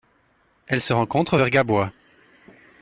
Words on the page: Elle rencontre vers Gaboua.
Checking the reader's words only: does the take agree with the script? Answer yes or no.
no